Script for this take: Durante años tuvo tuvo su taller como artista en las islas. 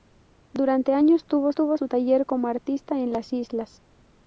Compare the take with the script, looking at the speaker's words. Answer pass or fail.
pass